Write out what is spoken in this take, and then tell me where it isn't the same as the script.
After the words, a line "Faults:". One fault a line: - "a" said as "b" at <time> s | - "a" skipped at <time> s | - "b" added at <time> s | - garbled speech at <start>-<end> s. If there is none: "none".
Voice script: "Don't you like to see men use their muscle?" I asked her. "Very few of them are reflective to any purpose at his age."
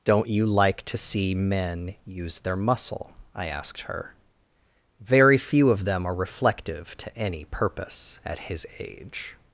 "Don't you like to see men use their muscle?" I asked her. "Very few of them are reflective to any purpose at his age."
Faults:
none